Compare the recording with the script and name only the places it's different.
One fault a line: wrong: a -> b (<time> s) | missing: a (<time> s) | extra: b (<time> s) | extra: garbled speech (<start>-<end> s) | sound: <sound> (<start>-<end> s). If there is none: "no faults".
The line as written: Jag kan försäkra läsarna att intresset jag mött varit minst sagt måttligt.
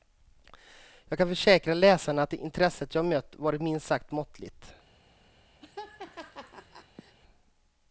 sound: laugh (5.6-7.2 s)